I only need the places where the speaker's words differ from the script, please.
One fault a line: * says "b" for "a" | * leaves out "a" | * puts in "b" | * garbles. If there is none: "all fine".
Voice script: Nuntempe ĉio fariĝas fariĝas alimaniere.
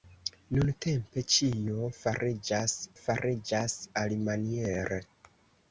all fine